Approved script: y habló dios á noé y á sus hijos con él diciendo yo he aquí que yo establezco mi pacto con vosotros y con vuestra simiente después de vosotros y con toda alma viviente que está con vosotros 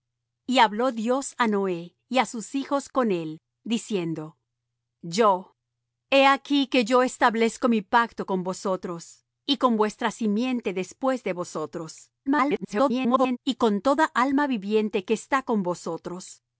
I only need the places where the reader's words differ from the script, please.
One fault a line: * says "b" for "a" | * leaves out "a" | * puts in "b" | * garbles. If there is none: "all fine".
* garbles